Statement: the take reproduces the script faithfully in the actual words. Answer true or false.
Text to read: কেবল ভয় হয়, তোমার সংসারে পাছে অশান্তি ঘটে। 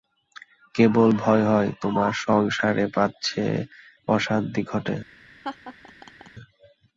true